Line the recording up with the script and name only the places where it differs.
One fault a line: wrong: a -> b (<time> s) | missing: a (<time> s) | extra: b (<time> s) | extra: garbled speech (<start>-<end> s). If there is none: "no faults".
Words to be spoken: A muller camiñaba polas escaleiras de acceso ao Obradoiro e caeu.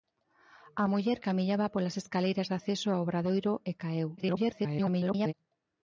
extra: garbled speech (4.2-5.3 s)